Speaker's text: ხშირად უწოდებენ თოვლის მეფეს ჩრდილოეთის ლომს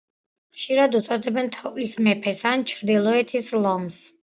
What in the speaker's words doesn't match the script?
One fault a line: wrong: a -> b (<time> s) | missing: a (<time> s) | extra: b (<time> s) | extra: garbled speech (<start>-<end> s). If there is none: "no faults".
extra: ან (2.5 s)